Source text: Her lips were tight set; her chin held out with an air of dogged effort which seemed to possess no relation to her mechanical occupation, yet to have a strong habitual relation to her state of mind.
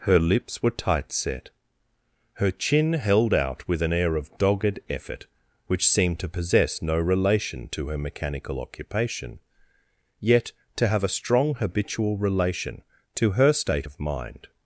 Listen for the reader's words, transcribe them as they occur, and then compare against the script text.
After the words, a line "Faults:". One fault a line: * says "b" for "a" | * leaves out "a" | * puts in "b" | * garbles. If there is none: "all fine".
Her lips were tight set; her chin held out with an air of dogged effort which seemed to possess no relation to her mechanical occupation, yet to have a strong habitual relation to her state of mind.
Faults:
all fine